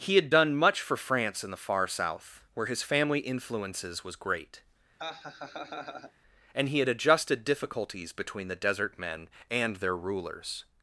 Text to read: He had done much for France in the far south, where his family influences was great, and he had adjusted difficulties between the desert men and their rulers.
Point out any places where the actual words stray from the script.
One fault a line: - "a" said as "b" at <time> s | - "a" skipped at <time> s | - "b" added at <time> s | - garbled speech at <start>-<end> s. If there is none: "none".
none